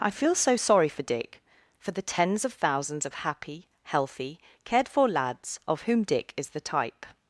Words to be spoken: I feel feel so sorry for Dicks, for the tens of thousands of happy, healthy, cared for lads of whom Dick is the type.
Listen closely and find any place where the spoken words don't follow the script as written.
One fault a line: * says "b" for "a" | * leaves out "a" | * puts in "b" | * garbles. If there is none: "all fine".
* leaves out "feel"
* says "Dick" for "Dicks"